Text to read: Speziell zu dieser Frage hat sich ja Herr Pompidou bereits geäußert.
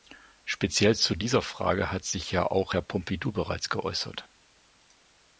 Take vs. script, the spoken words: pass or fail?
fail